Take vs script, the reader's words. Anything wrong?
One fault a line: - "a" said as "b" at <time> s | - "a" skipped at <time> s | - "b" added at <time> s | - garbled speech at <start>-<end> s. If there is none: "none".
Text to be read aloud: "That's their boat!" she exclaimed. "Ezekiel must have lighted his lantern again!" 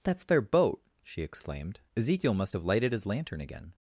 none